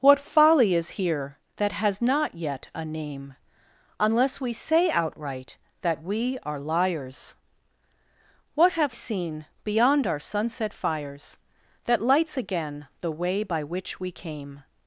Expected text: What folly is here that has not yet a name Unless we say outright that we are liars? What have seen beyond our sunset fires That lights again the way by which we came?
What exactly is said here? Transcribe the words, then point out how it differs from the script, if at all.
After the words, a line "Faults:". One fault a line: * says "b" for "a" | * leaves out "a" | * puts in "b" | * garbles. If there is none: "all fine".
What folly is here that has not yet a name Unless we say outright that we are liars? What have seen beyond our sunset fires That lights again the way by which we came?
Faults:
all fine